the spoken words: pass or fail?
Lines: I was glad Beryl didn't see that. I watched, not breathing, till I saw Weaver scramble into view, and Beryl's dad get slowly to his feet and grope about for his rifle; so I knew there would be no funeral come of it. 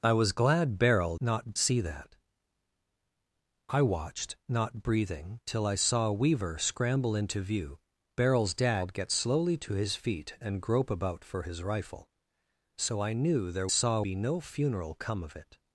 fail